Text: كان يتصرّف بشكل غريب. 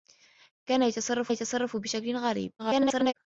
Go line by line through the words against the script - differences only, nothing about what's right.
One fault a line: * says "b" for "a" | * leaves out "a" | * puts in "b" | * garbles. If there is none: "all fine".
* puts in "يتصرّف"
* garbles